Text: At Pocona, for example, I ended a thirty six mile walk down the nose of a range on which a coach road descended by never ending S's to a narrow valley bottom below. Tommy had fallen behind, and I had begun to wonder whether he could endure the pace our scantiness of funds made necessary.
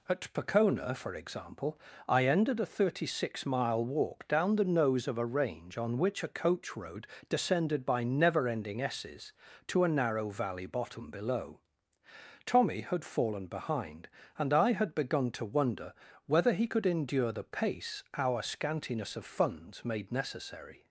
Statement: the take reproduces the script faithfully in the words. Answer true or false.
true